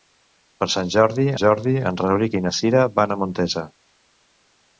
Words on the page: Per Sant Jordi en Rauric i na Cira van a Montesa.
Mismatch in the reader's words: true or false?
true